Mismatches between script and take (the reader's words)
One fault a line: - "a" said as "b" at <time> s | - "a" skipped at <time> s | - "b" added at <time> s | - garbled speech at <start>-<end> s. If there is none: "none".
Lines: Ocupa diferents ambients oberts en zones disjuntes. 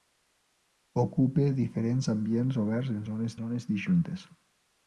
- "zones" added at 3.4 s